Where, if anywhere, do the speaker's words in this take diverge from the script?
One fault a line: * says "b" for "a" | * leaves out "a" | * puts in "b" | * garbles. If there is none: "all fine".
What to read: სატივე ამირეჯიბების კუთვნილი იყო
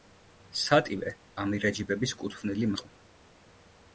all fine